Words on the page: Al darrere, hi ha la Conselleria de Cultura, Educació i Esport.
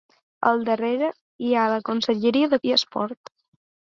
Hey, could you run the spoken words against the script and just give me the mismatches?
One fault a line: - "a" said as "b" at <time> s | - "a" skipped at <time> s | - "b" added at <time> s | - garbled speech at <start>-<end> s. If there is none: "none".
- "Cultura Educació" skipped at 2.6 s